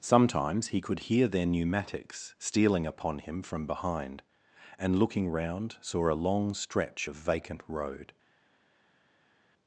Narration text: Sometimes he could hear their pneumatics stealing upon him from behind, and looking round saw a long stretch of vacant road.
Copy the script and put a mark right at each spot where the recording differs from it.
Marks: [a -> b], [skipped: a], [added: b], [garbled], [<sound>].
Sometimes he could hear their pneumatics stealing upon him from behind, and looking round saw a long stretch of vacant road.